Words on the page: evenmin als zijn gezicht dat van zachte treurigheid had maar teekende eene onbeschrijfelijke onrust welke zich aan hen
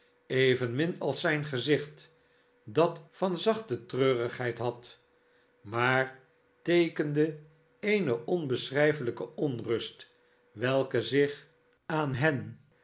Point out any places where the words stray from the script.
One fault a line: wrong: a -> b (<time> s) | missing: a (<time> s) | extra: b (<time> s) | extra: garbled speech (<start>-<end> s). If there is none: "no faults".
no faults